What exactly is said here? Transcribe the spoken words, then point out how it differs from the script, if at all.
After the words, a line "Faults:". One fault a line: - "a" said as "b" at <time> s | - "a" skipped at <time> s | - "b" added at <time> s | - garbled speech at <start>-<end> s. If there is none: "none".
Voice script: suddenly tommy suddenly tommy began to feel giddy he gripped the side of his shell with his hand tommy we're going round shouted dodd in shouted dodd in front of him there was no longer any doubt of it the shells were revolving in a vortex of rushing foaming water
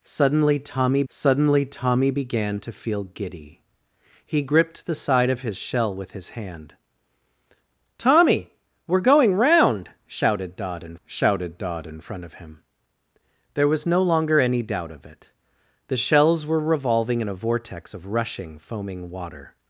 suddenly tommy suddenly tommy began to feel giddy he gripped the side of his shell with his hand tommy we're going round shouted dodd in shouted dodd in front of him there was no longer any doubt of it the shells were revolving in a vortex of rushing foaming water
Faults:
none